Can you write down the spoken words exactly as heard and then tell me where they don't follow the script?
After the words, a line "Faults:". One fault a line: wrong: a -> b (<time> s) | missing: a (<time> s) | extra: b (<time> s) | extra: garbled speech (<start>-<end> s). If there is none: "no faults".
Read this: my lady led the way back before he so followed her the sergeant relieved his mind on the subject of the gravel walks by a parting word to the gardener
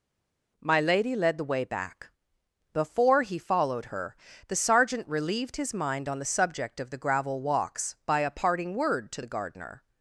my lady led the way back before he followed her the sergeant relieved his mind on the subject of the gravel walks by a parting word to the gardener
Faults:
missing: so (3.4 s)